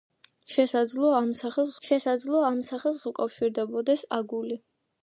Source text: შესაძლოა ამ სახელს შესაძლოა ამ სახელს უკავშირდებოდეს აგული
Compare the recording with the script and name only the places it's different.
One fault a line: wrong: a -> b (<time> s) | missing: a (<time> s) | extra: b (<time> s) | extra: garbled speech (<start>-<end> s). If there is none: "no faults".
no faults